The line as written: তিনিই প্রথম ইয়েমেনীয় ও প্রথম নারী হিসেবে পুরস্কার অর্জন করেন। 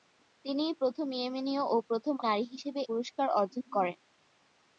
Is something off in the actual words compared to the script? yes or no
no